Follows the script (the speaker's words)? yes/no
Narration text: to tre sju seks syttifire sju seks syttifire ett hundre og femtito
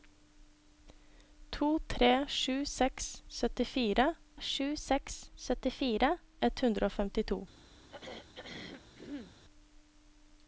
yes